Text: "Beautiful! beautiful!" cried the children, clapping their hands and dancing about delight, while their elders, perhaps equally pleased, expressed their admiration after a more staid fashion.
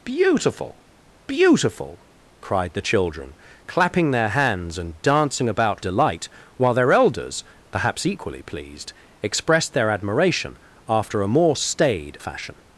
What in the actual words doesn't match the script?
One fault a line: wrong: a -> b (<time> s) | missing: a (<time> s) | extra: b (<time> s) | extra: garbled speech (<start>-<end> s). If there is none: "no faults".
no faults